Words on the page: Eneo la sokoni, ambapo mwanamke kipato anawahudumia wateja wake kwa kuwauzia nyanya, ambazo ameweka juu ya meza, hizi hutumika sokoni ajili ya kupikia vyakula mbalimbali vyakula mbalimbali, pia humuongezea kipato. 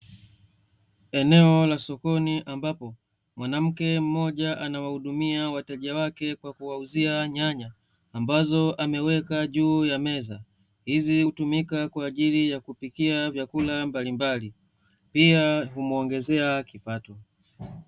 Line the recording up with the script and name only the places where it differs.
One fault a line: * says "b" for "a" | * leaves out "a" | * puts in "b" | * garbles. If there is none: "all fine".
* says "mmoja" for "kipato"
* says "kwa" for "sokoni"
* leaves out "vyakula mbalimbali"